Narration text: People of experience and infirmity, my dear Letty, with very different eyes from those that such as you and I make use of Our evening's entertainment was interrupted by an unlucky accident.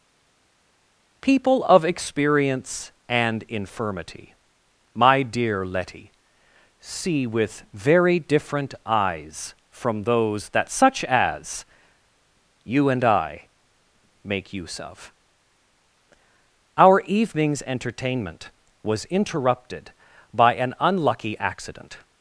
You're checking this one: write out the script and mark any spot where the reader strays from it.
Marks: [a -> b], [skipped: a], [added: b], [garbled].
People of experience and infirmity, my dear Letty, [added: see] with very different eyes from those that such as you and I make use of Our evening's entertainment was interrupted by an unlucky accident.